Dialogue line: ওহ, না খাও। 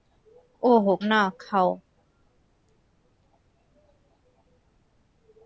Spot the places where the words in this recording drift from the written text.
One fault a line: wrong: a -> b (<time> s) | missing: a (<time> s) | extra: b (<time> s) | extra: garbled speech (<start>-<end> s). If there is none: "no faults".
no faults